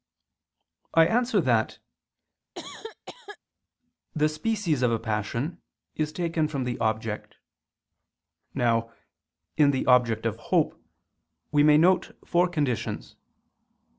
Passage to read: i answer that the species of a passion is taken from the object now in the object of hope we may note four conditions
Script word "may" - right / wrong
right